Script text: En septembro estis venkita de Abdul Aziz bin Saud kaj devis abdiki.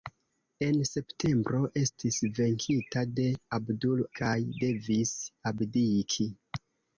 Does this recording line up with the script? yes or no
no